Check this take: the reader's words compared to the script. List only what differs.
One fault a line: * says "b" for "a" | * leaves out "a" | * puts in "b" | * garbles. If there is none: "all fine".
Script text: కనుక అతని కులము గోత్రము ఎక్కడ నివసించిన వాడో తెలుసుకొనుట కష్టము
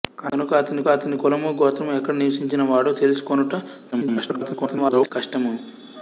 * puts in "అతని"
* garbles